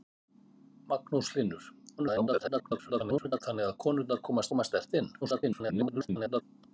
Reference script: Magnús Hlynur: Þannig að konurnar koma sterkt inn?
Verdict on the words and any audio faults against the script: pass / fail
fail